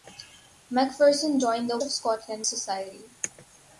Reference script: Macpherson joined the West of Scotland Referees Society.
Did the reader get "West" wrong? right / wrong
wrong